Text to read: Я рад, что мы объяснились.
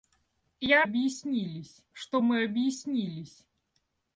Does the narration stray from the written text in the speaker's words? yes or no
yes